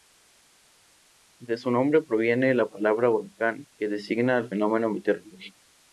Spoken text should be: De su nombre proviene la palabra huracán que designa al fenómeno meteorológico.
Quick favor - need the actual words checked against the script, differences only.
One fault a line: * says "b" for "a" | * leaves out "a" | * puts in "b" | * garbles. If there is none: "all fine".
all fine